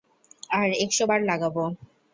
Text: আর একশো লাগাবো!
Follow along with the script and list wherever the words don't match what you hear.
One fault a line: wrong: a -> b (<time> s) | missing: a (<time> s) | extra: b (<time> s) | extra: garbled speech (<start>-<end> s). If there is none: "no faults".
extra: বার (1.1 s)